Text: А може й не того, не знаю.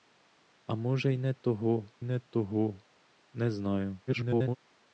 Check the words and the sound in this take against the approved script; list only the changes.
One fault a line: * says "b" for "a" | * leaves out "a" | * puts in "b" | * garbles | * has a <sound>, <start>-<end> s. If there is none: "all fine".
* puts in "того не"
* garbles